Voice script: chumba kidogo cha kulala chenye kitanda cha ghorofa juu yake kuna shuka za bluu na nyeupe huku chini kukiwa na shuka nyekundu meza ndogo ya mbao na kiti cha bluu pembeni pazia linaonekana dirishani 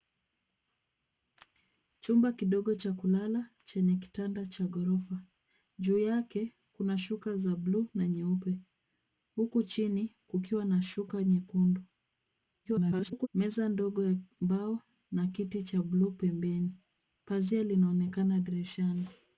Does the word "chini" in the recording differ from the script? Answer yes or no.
no